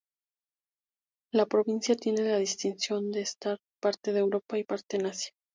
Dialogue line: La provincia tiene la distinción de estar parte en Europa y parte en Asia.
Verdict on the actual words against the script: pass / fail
pass